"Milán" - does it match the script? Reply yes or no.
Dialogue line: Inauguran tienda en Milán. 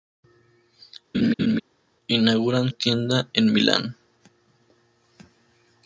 yes